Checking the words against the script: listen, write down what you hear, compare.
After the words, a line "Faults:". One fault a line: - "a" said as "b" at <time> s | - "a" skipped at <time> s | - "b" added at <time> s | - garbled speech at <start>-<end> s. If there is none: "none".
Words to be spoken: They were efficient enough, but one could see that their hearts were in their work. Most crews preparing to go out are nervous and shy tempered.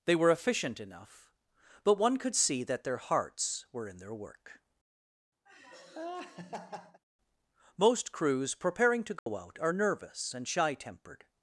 They were efficient enough, but one could see that their hearts were in their work. Most crews preparing to go out are nervous and shy tempered.
Faults:
none